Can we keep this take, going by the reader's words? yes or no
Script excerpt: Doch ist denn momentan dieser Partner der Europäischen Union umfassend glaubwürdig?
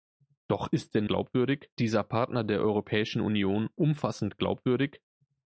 no